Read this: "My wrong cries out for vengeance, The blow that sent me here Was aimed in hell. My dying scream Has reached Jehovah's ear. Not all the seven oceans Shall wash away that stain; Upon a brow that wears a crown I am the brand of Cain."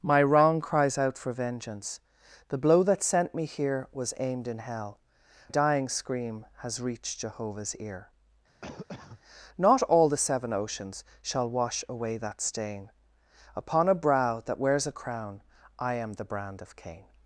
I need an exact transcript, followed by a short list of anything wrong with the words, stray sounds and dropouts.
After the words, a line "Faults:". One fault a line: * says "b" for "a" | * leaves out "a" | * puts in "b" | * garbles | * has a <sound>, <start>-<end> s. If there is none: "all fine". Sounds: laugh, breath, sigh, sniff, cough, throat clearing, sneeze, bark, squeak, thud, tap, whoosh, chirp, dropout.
"My wrong cries out for vengeance, The blow that sent me here Was aimed in hell. Dying scream Has reached Jehovah's ear. Not all the seven oceans Shall wash away that stain; Upon a brow that wears a crown I am the brand of Cain."
Faults:
* leaves out "My"
* has a cough, 8.6-9.2 s